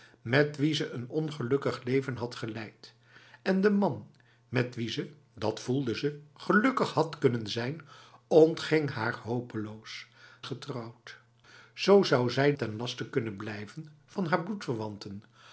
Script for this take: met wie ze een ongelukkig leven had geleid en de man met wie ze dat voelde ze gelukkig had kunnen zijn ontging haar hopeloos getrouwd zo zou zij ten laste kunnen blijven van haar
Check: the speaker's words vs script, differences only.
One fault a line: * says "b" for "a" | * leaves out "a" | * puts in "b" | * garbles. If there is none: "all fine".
all fine